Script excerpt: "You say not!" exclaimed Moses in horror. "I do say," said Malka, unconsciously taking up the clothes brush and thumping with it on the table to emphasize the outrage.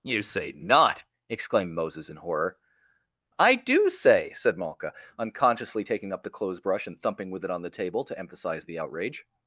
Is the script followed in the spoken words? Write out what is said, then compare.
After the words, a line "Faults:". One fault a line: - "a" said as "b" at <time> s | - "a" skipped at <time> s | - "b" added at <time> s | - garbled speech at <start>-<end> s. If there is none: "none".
"You say not!" exclaimed Moses in horror. "I do say," said Malka, unconsciously taking up the clothes brush and thumping with it on the table to emphasize the outrage.
Faults:
none